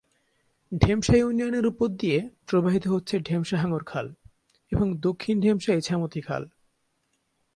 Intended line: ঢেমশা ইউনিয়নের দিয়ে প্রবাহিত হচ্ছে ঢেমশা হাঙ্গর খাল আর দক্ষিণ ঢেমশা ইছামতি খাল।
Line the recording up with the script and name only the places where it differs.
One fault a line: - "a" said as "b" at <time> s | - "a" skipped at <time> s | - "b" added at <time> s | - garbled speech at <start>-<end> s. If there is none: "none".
- "উপর" added at 1.6 s
- "আর" said as "এবং" at 4.7 s